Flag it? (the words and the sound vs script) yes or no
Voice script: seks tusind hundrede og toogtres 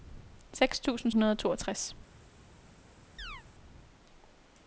yes